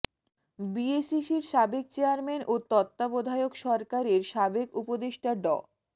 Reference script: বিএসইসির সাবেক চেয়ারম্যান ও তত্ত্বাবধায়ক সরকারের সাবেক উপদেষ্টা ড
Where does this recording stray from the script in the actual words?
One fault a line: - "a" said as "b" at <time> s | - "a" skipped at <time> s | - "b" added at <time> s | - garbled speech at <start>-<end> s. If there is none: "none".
none